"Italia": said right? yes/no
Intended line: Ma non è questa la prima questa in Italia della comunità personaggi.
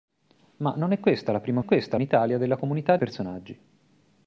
yes